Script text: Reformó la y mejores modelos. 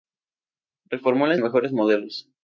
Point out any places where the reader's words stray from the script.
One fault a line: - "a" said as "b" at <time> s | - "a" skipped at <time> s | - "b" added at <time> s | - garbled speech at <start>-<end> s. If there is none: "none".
none